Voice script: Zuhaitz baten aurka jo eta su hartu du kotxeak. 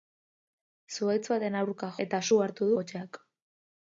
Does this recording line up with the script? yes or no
no